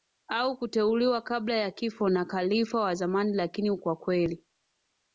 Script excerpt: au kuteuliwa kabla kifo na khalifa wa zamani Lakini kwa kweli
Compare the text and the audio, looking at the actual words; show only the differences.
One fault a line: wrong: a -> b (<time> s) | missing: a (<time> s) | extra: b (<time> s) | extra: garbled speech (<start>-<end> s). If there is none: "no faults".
extra: ya (1.6 s)